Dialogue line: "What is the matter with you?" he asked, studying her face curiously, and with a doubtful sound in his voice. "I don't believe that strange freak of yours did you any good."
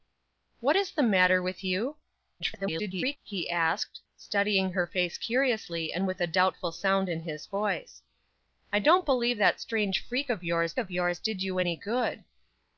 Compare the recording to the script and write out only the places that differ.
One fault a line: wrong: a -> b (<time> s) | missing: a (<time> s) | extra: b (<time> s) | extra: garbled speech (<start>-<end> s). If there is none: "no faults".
extra: garbled speech (2.4-3.2 s)
extra: of yours (10.8 s)